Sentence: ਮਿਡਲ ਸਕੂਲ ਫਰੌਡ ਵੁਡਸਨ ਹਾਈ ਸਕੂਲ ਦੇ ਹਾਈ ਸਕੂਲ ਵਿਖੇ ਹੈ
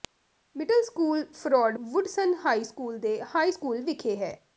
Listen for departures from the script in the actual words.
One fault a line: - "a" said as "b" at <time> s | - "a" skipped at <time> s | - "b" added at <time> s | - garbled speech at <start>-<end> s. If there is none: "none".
none